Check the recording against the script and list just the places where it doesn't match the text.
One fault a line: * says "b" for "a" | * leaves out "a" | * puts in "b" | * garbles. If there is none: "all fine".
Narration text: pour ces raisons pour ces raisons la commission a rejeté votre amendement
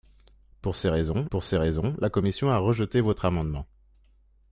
all fine